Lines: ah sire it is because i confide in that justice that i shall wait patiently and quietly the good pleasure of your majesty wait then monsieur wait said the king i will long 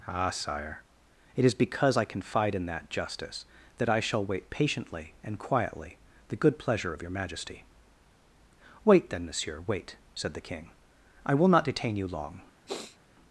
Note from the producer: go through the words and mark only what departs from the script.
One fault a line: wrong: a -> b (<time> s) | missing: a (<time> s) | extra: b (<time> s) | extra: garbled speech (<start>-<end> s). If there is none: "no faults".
extra: not detain you (11.5 s)